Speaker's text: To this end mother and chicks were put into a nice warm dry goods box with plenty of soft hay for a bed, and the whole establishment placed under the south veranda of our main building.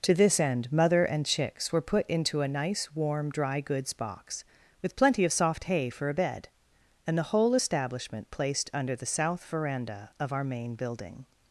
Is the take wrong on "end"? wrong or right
right